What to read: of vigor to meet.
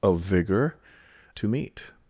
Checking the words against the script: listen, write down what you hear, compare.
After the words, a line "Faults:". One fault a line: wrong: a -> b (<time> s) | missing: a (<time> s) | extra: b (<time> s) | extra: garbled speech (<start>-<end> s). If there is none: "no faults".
of vigor to meet.
Faults:
no faults